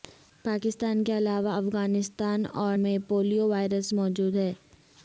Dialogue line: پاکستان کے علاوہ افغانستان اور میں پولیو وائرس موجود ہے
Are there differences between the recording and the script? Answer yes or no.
no